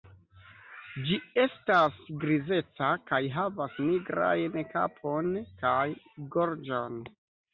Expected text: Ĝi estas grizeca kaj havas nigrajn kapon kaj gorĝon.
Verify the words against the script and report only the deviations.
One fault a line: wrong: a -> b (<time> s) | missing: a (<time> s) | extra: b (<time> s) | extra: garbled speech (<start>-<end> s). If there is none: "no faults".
no faults